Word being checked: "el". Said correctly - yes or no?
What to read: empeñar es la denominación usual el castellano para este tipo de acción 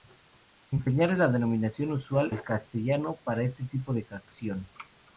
yes